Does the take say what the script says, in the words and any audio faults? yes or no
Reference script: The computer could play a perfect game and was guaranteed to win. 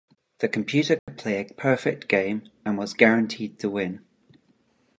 no